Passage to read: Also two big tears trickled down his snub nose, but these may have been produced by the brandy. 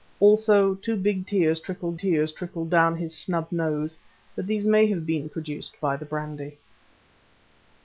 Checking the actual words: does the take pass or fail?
fail